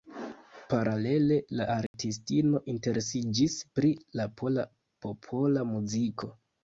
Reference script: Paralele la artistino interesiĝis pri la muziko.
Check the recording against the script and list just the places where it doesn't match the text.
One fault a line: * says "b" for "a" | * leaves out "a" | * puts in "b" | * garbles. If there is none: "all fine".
* puts in "pola popola"